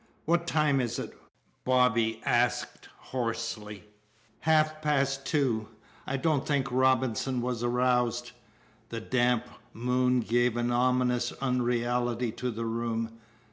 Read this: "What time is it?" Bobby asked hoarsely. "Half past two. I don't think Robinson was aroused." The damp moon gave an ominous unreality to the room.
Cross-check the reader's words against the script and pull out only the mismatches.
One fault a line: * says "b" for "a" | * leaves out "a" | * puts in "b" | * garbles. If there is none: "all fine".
all fine